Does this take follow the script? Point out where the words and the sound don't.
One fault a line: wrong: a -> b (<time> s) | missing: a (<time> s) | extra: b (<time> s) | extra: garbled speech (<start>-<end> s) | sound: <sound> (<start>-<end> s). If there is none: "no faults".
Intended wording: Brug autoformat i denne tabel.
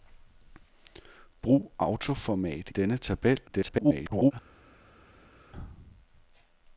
missing: i (2.7 s)
extra: garbled speech (3.5-4.3 s)